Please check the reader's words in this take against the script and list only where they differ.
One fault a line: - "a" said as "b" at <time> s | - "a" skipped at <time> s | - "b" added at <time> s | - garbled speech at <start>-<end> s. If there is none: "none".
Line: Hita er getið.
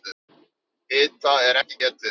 - "ekki" added at 1.6 s